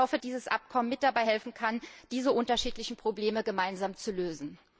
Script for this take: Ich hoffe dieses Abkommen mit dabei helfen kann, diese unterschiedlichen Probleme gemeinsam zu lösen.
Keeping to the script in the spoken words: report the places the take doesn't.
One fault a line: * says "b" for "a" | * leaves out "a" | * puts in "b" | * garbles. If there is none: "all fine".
all fine